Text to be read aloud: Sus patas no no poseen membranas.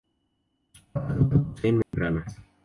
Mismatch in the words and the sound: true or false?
true